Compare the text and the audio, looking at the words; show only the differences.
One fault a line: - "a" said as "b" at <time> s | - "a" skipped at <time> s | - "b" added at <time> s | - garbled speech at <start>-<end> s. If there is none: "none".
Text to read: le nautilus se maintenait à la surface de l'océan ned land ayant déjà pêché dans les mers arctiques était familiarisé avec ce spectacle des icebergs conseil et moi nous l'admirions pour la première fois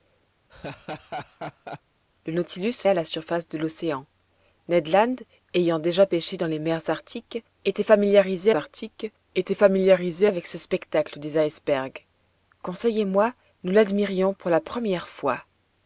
- "maintenait" skipped at 2.9 s
- "arctiques était familiarisé" added at 8.5 s